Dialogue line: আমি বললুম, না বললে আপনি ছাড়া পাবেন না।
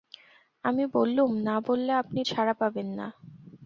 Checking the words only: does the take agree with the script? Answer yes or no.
yes